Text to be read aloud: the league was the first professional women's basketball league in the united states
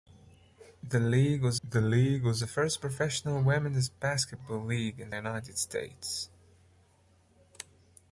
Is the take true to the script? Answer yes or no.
no